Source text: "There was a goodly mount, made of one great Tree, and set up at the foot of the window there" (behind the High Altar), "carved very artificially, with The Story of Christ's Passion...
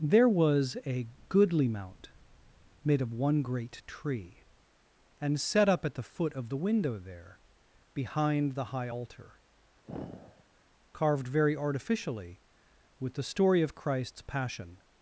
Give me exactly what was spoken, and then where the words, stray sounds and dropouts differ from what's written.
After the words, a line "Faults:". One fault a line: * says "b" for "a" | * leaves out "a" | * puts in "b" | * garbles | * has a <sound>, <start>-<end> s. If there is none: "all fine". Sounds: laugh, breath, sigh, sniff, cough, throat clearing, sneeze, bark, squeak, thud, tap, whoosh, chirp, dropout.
"There was a goodly mount, made of one great Tree, and set up at the foot of the window there" (behind the High Altar), "carved very artificially, with The Story of Christ's Passion...
Faults:
* has a sigh, 9.9-10.4 s